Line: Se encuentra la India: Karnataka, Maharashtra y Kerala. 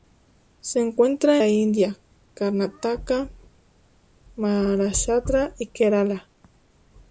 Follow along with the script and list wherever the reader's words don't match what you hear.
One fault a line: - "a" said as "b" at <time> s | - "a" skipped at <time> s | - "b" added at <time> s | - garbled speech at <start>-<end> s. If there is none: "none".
none